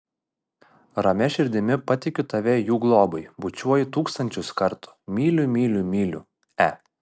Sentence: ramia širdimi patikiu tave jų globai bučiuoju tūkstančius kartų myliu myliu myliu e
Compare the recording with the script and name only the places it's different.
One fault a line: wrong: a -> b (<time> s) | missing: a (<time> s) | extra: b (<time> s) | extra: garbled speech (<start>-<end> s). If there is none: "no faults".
no faults